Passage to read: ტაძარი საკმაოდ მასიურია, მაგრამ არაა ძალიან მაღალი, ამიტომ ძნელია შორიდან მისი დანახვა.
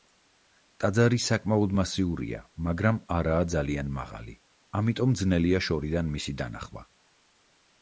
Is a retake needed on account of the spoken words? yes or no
no